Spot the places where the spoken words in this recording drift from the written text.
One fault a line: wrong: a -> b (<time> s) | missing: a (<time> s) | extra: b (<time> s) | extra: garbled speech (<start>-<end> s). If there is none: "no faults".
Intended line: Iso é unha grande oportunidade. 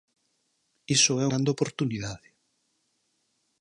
missing: unha (1.2 s)